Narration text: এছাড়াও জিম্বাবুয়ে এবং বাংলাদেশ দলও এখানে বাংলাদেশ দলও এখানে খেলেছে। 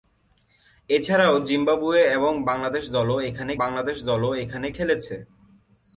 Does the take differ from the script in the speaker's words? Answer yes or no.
no